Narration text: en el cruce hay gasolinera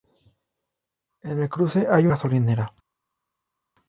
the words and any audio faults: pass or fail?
pass